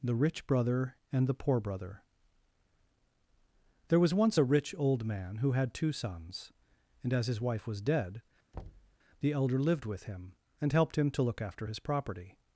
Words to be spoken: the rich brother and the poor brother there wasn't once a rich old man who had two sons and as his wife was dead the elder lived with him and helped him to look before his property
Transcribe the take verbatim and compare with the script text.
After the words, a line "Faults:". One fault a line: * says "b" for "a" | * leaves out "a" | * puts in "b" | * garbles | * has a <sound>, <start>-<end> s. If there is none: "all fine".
the rich brother and the poor brother there was once a rich old man who had two sons and as his wife was dead the elder lived with him and helped him to look after his property
Faults:
* says "was" for "wasn't"
* has a thud, 8.5-9.0 s
* says "after" for "before"